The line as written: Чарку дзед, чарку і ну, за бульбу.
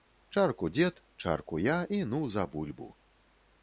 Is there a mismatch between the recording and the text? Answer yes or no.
yes